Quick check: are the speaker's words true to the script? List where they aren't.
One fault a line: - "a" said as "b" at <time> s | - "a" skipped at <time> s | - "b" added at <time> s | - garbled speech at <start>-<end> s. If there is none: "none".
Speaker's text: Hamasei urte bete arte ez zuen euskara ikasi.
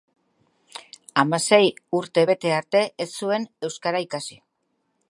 none